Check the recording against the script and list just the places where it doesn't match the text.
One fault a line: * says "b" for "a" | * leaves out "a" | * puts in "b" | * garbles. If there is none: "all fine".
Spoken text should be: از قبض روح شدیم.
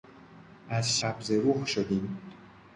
all fine